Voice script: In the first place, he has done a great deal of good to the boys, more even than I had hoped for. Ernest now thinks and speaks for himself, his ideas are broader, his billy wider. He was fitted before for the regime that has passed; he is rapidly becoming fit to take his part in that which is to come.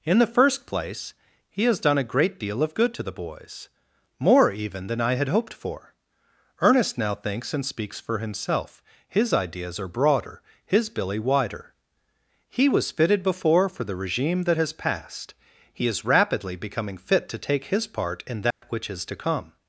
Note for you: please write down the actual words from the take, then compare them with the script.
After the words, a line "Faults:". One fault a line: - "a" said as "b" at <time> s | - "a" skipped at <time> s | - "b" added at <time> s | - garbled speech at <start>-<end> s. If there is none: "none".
In the first place, he has done a great deal of good to the boys, more even than I had hoped for. Ernest now thinks and speaks for himself, his ideas are broader, his billy wider. He was fitted before for the regime that has passed; he is rapidly becoming fit to take his part in that which is to come.
Faults:
none